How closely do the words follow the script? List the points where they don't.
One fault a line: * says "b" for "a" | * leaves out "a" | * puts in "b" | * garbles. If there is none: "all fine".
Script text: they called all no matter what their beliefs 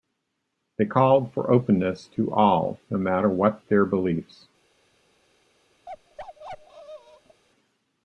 * puts in "for openness to"